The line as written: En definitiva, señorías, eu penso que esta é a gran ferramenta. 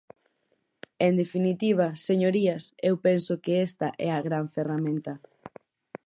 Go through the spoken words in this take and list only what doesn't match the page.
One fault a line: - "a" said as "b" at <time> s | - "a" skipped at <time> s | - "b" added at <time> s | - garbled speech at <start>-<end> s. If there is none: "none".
none